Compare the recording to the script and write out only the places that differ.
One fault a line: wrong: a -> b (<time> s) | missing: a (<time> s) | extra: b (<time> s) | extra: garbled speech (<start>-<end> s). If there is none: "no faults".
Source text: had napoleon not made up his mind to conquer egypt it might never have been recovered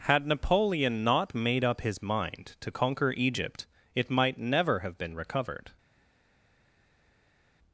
no faults